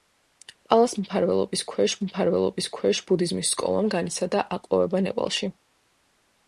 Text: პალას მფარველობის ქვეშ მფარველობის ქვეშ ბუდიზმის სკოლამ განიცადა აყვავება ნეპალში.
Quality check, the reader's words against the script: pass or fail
pass